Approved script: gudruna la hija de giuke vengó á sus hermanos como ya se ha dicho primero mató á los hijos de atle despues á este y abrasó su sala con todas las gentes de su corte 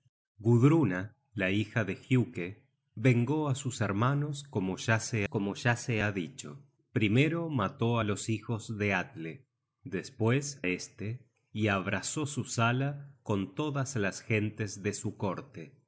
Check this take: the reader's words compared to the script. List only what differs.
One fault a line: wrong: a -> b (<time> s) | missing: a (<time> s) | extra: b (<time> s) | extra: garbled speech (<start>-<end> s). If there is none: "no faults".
extra: como ya se (5.2 s)
missing: á (10.6 s)